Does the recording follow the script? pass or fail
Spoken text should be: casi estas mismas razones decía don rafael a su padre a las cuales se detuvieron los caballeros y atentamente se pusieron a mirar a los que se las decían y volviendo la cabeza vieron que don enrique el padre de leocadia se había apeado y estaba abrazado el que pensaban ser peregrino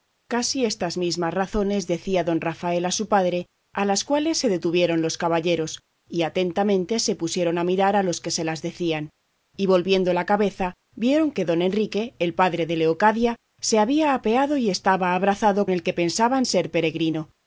pass